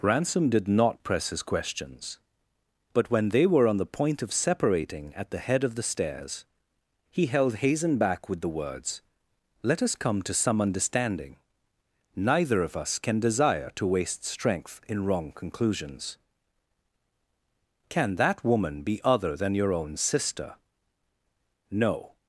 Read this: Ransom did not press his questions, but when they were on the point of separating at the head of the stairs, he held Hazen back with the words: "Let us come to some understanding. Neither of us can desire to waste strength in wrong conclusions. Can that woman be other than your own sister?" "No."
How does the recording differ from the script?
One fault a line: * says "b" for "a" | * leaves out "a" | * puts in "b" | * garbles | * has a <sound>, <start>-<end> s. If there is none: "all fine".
all fine